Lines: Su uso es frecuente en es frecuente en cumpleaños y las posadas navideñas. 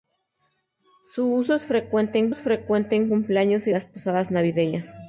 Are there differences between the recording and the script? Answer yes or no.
no